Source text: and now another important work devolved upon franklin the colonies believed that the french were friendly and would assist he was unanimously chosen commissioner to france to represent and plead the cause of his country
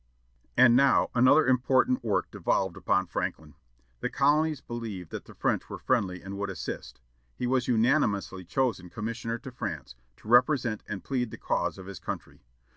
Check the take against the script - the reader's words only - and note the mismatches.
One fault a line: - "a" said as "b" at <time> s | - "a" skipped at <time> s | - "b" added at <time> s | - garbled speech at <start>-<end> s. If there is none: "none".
none